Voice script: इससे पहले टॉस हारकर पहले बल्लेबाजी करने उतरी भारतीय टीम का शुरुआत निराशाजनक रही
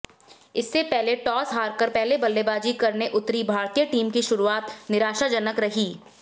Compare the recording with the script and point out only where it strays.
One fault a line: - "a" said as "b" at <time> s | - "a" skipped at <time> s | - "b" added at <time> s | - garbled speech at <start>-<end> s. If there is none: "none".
- "का" said as "की" at 4.1 s